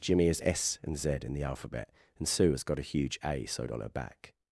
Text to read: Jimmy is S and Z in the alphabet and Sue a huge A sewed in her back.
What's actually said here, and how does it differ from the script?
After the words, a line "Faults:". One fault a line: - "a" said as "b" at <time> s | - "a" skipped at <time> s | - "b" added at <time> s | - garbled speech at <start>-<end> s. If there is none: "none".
Jimmy is S and Z in the alphabet and Sue has got a huge A sewed on her back.
Faults:
- "has got" added at 2.5 s
- "in" said as "on" at 3.7 s